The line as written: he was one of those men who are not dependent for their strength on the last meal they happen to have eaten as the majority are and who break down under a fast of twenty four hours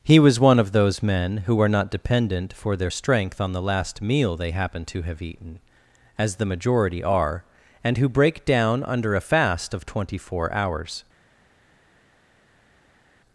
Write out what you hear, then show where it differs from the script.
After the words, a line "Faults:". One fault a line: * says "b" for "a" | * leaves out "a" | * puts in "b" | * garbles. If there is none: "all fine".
he was one of those men who are not dependent for their strength on the last meal they happen to have eaten as the majority are and who break down under a fast of twenty four hours
Faults:
all fine